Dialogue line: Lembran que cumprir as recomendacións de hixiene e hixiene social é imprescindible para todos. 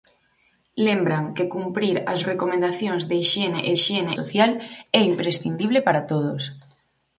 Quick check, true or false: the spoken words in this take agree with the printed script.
true